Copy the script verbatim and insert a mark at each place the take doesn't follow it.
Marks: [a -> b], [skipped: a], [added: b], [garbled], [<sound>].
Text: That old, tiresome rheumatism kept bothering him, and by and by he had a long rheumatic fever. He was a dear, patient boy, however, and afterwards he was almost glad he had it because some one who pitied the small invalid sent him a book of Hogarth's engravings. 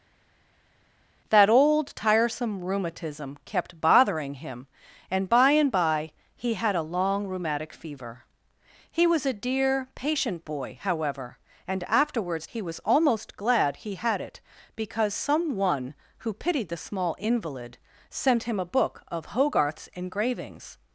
That old, tiresome rheumatism kept bothering him, and by and by he had a long rheumatic fever. He was a dear, patient boy, however, and afterwards he was almost glad he had it because some one who pitied the small invalid sent him a book of Hogarth's engravings.